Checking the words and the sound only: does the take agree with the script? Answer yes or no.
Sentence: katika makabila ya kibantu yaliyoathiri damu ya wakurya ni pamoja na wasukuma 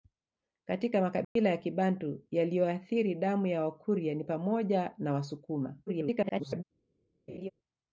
no